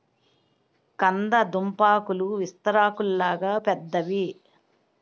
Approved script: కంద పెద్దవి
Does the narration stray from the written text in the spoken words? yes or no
yes